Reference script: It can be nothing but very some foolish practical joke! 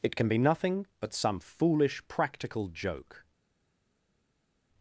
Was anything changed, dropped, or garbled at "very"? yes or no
yes